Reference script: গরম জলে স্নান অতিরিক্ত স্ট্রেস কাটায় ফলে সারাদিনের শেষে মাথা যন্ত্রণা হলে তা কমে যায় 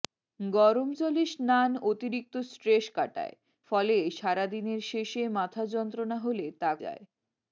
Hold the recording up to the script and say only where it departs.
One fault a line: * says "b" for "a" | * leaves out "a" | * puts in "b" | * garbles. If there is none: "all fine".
* leaves out "কমে"